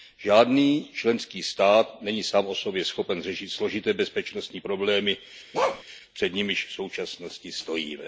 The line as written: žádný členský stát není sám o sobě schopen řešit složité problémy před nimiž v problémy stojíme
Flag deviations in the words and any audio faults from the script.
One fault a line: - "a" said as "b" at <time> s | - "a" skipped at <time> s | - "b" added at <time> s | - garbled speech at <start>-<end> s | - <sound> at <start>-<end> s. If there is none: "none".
- "bezpečnostní" added at 3.9 s
- bark at 5.5-5.8 s
- "problémy" said as "současnosti" at 6.7 s